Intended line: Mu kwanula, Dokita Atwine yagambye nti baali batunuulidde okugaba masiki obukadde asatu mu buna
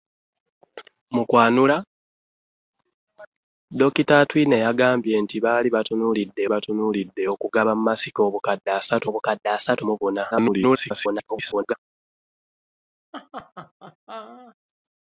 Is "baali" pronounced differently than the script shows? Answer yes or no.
no